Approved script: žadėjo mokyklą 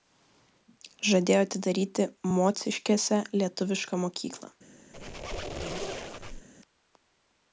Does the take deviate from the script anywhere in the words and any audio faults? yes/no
yes